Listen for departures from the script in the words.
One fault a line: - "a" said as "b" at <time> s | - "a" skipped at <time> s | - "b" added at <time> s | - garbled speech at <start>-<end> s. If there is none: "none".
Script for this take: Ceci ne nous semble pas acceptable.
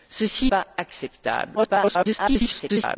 - "ne nous semble" skipped at 0.5 s
- garbled speech at 1.6-3.0 s